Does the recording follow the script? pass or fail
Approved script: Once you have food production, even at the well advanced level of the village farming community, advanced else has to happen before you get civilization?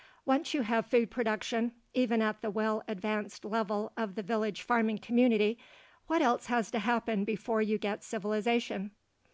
fail